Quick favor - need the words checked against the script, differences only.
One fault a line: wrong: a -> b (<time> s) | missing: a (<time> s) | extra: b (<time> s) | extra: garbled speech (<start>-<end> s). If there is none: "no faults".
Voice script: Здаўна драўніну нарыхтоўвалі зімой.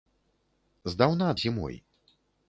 missing: драўніну нарыхтоўвалі (1.3 s)